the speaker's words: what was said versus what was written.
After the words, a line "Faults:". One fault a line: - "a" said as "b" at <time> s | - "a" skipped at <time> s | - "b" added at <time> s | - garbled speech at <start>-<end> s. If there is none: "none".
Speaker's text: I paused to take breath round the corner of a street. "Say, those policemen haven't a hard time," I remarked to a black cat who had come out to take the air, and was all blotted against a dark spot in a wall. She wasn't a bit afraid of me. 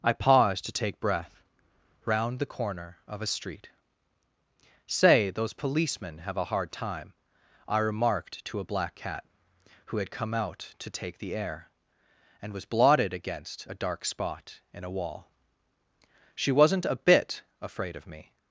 I paused to take breath round the corner of a street. "Say, those policemen have a hard time," I remarked to a black cat who had come out to take the air, and was blotted against a dark spot in a wall. She wasn't a bit afraid of me.
Faults:
- "haven't" said as "have" at 6.2 s
- "all" skipped at 12.6 s